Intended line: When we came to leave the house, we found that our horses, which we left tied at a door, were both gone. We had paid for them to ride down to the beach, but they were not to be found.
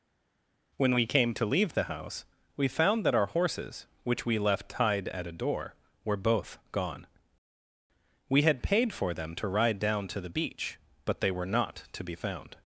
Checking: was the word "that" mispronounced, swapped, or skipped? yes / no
no